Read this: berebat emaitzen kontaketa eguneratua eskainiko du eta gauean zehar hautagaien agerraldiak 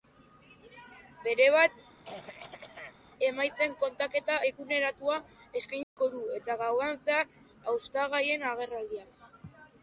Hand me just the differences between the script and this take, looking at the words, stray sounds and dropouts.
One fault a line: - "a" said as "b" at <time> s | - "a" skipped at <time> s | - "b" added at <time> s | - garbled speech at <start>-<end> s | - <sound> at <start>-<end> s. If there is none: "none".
- throat clearing at 2.0-3.0 s
- dropout at 5.8-6.0 s